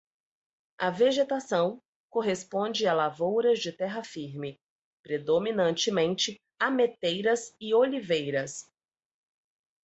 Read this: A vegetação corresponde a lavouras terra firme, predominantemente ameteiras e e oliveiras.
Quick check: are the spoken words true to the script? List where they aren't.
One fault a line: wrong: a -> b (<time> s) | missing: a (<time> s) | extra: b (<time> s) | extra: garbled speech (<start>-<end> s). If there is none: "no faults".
extra: de (3.6 s)
missing: e (7.7 s)